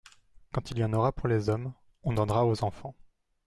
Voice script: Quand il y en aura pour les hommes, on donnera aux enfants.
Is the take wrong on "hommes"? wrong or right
right